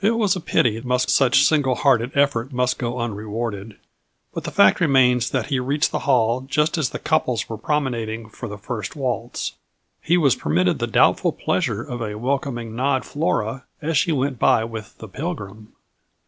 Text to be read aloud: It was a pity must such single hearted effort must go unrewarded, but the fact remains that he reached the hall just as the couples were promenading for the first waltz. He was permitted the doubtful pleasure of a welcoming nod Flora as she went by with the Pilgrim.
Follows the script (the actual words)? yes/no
yes